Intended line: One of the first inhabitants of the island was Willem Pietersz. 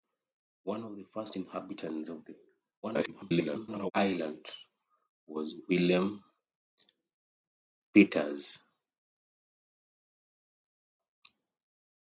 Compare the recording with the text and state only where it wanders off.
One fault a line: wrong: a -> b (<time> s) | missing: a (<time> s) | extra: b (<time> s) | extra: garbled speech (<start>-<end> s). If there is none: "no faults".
extra: garbled speech (2.8-3.9 s)